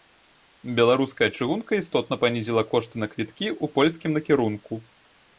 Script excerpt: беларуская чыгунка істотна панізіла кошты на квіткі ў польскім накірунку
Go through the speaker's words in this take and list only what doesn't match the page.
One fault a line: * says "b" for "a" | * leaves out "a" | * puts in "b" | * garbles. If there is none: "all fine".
all fine